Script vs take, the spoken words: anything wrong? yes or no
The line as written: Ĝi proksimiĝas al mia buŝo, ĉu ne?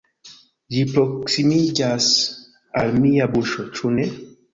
no